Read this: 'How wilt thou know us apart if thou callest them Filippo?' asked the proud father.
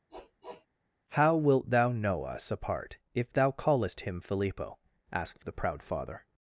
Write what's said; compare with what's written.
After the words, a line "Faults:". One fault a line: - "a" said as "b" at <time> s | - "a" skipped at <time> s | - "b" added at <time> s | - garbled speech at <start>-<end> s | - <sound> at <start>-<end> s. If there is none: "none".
'How wilt thou know us apart if thou callest him Filippo?' asked the proud father.
Faults:
- sniff at 0.1-0.7 s
- "them" said as "him" at 4.0 s